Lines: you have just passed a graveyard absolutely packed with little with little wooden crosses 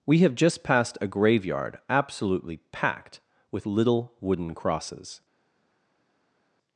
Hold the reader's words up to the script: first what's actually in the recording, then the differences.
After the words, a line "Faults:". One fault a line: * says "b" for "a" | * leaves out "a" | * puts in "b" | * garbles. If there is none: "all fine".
we have just passed a graveyard absolutely packed with little wooden crosses
Faults:
* says "we" for "you"
* leaves out "with little"